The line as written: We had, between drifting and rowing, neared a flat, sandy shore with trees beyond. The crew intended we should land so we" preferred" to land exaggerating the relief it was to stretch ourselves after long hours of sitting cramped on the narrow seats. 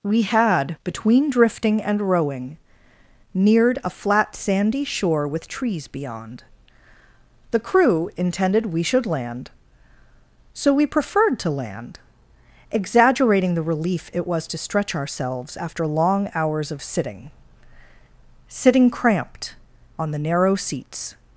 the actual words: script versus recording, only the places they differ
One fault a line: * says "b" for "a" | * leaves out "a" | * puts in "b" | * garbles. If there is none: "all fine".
* puts in "sitting"